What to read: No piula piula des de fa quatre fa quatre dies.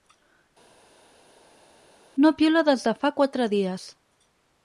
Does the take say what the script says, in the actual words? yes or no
no